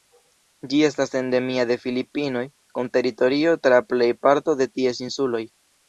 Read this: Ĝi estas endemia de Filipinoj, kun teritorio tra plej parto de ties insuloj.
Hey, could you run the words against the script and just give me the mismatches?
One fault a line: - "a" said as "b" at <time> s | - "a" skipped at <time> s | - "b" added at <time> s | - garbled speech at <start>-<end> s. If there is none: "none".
none